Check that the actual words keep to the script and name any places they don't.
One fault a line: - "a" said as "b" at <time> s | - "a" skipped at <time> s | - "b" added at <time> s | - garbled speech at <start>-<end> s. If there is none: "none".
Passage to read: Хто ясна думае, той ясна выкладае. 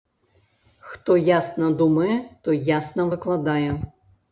none